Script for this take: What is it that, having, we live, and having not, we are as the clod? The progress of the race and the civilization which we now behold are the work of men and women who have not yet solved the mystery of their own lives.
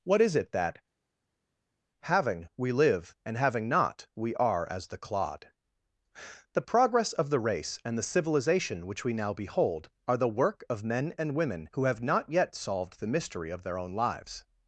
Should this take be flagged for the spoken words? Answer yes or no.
no